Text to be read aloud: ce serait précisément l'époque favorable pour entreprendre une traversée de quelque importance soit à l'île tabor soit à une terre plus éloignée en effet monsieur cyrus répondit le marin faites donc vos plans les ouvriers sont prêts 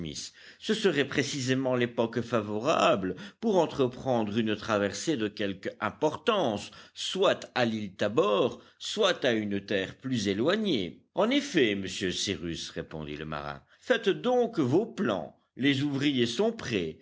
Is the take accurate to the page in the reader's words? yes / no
yes